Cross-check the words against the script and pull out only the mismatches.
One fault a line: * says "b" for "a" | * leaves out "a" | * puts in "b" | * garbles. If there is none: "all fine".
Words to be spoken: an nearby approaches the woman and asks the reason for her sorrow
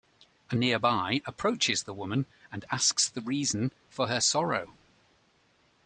all fine